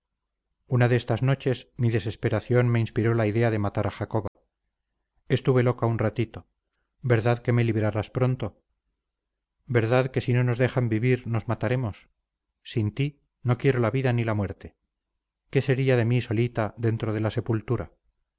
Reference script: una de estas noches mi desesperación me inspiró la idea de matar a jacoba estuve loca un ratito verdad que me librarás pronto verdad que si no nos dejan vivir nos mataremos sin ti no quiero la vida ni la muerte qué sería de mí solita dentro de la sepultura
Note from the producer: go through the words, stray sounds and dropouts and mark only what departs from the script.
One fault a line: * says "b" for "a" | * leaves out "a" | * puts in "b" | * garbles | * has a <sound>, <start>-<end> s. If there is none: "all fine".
* has a dropout, 4.3-4.4 s